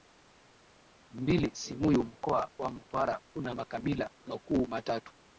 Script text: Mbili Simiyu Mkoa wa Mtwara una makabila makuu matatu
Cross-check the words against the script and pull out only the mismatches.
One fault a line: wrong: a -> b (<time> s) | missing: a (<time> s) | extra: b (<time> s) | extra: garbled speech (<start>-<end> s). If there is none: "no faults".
no faults